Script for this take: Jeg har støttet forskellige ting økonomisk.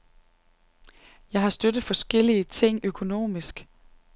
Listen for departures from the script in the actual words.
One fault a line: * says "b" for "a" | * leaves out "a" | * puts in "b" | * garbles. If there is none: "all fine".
all fine